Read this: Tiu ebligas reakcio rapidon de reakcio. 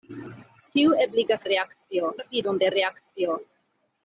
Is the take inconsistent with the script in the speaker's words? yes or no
no